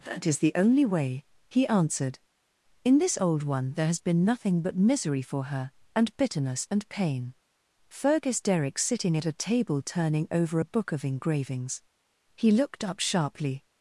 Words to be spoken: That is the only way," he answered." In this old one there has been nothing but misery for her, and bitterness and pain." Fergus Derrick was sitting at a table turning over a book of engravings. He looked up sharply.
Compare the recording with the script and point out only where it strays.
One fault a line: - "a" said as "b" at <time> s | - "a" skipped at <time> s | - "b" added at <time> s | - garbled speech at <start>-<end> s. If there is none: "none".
- "was" skipped at 8.8 s